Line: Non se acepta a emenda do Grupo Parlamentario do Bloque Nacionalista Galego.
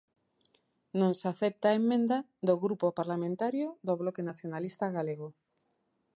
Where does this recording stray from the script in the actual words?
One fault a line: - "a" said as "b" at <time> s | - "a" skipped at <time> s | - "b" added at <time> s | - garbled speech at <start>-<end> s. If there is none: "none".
none